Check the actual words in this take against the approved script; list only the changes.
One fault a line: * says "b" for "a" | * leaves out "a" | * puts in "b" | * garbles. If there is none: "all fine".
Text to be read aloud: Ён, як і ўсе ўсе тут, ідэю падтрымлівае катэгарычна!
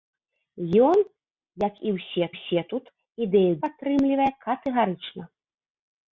all fine